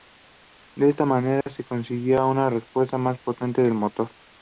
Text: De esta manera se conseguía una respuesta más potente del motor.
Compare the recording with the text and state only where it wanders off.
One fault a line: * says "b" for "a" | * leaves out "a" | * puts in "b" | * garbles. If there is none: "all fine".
all fine